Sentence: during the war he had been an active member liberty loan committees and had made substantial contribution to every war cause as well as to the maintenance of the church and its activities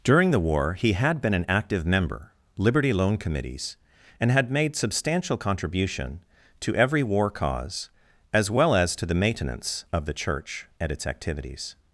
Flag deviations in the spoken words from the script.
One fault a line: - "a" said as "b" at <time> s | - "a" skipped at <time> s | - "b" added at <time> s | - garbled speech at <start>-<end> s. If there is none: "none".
none